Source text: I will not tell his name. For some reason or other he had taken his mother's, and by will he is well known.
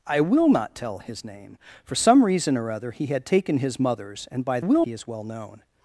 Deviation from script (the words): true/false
false